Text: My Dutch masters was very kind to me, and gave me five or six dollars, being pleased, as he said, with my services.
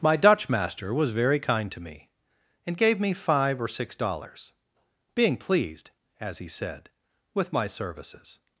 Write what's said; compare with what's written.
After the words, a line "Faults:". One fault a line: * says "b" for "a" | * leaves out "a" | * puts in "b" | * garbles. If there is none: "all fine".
My Dutch master was very kind to me, and gave me five or six dollars, being pleased, as he said, with my services.
Faults:
* says "master" for "masters"